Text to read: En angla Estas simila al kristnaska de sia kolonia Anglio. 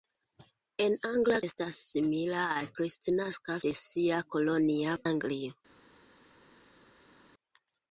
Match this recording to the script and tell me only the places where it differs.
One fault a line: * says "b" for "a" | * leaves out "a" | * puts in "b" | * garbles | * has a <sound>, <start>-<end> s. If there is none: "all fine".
all fine